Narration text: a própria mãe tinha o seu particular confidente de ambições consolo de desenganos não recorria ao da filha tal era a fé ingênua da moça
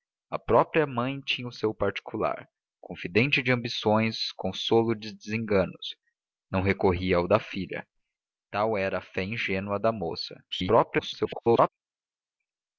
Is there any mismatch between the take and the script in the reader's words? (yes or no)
yes